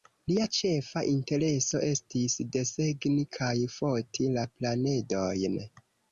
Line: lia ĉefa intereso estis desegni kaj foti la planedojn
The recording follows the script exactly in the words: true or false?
true